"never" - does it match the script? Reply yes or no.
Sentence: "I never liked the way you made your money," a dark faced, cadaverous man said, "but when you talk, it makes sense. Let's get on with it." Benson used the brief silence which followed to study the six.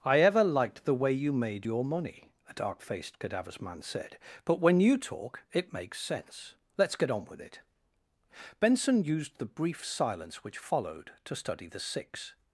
no